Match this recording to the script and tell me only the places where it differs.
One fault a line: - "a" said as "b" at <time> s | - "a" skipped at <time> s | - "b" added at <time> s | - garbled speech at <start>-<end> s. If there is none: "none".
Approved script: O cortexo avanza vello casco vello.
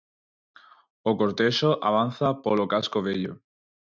- "vello" said as "polo" at 2.4 s